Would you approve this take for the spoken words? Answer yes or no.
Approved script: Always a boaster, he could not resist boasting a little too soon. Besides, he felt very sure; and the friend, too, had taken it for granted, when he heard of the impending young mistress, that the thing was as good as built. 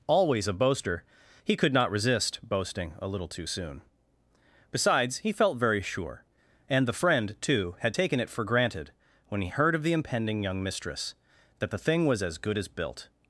yes